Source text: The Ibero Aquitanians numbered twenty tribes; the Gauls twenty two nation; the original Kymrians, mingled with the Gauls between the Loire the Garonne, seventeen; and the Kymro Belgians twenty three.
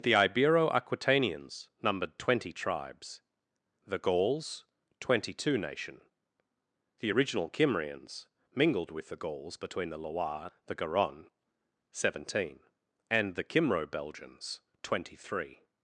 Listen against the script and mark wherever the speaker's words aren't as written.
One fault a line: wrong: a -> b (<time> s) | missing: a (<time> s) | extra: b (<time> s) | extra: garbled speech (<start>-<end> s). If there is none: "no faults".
no faults